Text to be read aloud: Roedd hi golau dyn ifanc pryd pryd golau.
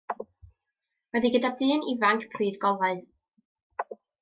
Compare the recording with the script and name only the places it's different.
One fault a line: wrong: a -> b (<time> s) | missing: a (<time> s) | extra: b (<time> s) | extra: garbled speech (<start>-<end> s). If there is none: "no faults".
wrong: golau -> gyda (1.4 s)
missing: pryd (2.6 s)